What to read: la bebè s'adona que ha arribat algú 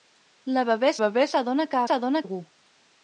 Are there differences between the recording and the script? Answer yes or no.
yes